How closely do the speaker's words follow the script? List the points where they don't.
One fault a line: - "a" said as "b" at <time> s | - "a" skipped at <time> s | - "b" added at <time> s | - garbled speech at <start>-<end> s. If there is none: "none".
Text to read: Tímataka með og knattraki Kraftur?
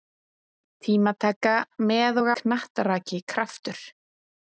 none